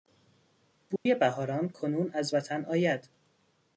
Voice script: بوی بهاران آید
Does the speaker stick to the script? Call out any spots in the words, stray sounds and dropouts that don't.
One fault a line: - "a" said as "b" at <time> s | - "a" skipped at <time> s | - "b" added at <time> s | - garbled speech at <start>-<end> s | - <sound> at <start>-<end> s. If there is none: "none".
- dropout at 1.0-1.1 s
- "کنون از وطن" added at 1.7 s